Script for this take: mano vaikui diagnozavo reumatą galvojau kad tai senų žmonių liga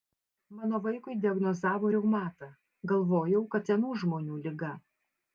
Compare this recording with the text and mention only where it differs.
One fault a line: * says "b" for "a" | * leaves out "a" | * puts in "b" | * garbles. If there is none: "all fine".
* leaves out "tai"